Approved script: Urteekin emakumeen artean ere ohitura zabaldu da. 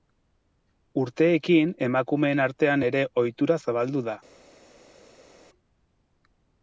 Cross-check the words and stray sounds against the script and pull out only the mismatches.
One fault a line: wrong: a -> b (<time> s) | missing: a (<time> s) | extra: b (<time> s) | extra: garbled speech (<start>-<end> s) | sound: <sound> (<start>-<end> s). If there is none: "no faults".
no faults